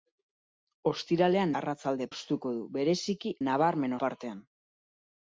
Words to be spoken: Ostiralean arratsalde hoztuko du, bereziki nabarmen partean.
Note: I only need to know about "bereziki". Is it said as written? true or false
true